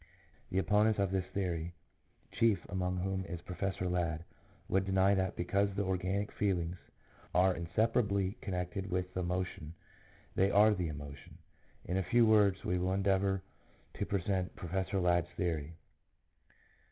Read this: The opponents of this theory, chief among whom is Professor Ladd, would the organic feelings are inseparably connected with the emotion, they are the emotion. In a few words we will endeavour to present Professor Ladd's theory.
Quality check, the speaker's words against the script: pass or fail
fail